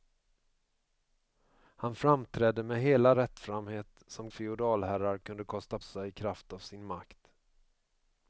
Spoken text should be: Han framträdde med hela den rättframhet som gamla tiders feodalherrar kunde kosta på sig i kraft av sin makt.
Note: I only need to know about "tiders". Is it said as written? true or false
false